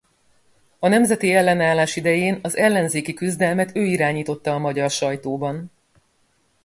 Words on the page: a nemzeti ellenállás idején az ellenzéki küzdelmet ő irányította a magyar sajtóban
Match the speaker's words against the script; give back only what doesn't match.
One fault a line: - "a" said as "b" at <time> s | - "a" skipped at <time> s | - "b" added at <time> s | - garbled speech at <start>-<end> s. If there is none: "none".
none